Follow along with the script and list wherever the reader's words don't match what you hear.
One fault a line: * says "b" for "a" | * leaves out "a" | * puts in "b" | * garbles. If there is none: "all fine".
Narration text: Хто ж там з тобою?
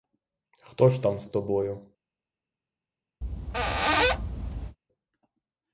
all fine